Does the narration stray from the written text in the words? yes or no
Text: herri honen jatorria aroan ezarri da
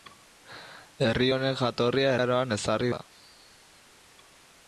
no